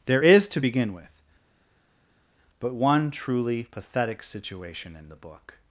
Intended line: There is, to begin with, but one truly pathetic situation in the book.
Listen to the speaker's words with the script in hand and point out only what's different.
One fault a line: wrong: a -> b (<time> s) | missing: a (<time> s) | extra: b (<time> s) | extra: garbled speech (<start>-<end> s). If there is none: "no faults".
no faults